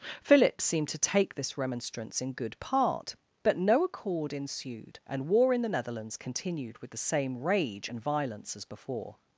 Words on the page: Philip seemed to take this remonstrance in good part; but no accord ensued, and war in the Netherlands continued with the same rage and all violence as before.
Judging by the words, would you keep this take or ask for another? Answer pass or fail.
fail